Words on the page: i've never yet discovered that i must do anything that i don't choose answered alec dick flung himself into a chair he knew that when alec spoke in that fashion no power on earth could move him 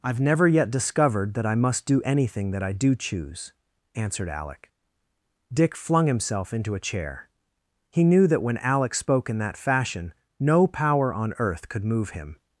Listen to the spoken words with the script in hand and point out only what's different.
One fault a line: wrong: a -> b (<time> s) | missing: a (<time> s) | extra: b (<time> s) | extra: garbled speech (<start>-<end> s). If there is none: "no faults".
wrong: don't -> do (2.7 s)